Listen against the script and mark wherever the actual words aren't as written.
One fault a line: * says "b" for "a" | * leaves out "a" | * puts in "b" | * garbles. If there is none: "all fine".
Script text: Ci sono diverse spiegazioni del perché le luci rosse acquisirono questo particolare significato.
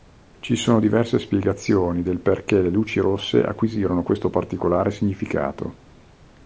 all fine